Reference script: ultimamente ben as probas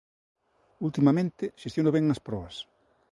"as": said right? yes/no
yes